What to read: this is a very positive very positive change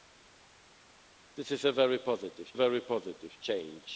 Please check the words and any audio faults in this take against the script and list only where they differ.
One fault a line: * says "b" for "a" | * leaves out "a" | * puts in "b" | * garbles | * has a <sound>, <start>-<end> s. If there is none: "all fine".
all fine